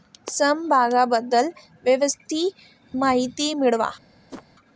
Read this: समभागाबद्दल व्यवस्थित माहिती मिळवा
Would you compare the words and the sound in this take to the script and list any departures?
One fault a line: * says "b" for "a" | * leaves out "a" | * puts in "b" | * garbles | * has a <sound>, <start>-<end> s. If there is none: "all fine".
* has a whoosh, 4.3-4.4 s